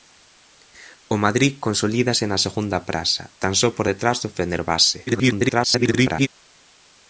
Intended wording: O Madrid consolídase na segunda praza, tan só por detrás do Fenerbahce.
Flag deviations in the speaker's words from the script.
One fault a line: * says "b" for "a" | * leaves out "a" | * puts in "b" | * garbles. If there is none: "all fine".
* garbles